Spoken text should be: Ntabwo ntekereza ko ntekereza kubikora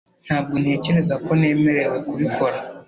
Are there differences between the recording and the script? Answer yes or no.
yes